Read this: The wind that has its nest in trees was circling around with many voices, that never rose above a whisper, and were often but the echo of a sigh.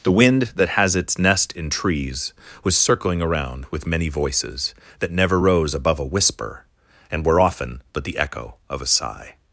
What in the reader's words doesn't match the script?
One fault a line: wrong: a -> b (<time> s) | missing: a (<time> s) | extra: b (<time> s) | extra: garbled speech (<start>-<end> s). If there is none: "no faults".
no faults